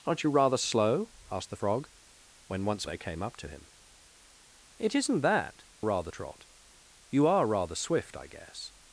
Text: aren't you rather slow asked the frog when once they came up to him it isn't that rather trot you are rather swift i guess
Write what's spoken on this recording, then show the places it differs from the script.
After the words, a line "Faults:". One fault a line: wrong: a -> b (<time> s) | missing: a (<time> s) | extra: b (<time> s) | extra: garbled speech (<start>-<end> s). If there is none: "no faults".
aren't you rather slow asked the frog when once they came up to him it isn't that rather trot you are rather swift i guess
Faults:
no faults